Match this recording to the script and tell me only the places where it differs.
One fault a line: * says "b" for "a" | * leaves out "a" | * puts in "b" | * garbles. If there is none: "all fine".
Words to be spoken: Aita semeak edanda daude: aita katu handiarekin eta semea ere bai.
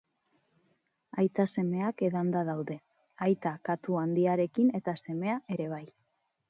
all fine